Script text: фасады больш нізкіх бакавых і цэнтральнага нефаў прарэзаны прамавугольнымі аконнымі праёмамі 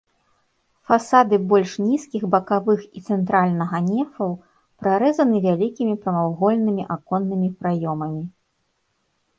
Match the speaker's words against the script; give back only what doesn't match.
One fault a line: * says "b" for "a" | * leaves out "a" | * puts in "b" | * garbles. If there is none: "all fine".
* puts in "вялікімі"